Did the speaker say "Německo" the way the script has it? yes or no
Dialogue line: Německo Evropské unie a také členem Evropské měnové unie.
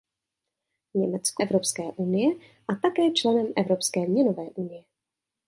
yes